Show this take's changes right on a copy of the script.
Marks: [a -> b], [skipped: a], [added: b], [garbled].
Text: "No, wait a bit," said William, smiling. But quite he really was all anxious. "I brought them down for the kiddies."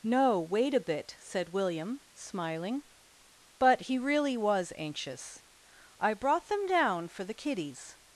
"No, wait a bit," said William, smiling. But [skipped: quite] he really was [skipped: all] anxious. "I brought them down for the kiddies."